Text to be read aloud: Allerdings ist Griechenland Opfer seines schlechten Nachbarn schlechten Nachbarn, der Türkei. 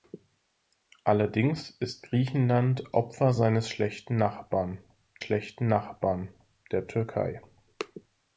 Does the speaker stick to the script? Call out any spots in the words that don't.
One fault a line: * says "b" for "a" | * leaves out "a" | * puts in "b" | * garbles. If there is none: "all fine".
all fine